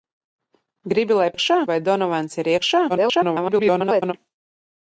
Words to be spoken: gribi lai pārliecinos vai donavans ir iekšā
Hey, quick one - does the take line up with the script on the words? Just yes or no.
no